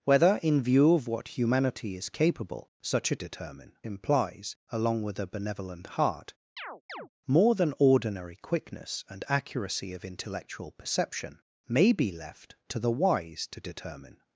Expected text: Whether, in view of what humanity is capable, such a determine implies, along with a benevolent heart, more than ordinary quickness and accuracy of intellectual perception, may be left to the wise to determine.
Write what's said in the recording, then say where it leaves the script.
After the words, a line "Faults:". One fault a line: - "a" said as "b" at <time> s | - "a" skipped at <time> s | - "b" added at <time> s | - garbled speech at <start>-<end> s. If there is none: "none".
Whether, in view of what humanity is capable, such a determine implies, along with a benevolent heart, more than ordinary quickness and accuracy of intellectual perception, may be left to the wise to determine.
Faults:
none